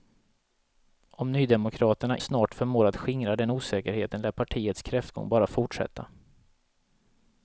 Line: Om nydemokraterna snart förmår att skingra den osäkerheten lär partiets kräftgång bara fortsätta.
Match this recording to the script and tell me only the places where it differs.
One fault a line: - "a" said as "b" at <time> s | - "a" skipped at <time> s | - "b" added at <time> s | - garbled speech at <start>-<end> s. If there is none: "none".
none